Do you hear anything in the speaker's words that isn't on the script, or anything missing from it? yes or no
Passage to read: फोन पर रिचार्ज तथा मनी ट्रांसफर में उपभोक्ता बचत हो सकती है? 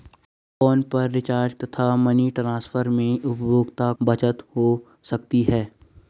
no